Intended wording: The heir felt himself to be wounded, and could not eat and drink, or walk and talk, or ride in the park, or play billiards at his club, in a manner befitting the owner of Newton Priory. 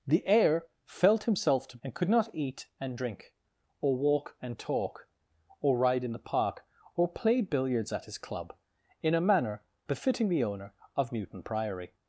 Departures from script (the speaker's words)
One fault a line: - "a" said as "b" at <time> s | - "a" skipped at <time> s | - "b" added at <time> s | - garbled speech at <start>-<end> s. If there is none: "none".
- "be wounded" skipped at 1.8 s